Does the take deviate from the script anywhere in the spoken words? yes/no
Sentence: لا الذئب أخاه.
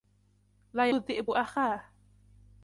no